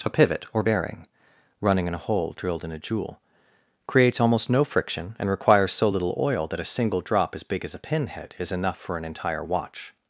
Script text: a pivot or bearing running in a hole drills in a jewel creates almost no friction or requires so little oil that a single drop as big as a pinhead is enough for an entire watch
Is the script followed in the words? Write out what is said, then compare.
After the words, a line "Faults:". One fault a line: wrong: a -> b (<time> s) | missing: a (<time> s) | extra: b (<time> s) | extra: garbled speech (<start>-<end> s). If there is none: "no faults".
a pivot or bearing running in a hole drilled in a jewel creates almost no friction and requires so little oil that a single drop as big as a pinhead is enough for an entire watch
Faults:
wrong: drills -> drilled (2.4 s)
wrong: or -> and (5.2 s)